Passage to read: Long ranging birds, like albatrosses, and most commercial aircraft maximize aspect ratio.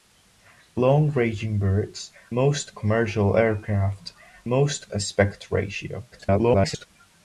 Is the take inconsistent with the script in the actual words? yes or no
yes